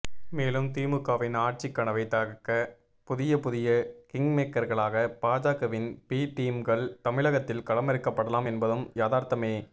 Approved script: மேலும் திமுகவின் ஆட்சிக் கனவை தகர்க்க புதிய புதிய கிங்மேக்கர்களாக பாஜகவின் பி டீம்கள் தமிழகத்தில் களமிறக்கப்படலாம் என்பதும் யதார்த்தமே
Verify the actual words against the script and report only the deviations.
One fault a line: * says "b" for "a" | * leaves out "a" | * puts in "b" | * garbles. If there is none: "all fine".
all fine